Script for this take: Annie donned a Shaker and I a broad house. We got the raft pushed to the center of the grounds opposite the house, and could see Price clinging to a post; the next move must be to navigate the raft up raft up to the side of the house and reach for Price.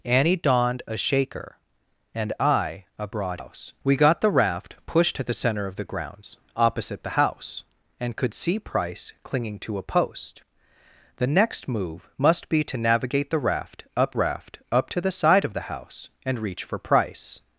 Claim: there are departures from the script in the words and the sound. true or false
false